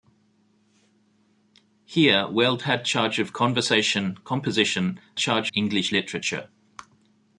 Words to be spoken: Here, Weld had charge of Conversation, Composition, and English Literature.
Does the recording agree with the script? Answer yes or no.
no